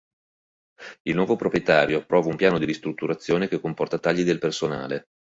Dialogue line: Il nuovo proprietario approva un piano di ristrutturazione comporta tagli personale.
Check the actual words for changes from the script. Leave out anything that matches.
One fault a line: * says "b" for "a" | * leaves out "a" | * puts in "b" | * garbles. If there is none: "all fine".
* puts in "che"
* puts in "del"